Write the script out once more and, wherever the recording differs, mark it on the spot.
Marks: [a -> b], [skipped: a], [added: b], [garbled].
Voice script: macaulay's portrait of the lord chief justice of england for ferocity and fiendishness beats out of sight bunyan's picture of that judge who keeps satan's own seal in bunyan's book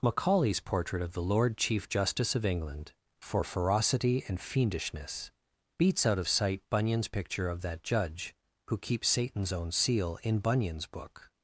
macaulay's portrait of the lord chief justice of england for ferocity and fiendishness beats out of sight bunyan's picture of that judge who keeps satan's own seal in bunyan's book